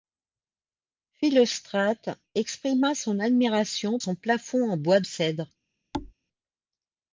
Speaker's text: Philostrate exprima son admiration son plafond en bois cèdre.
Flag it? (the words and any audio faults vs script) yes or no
yes